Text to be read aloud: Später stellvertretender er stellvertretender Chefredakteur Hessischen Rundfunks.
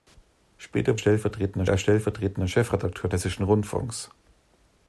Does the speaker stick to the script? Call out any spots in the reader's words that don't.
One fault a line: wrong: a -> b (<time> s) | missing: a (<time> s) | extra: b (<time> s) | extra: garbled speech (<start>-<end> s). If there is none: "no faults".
no faults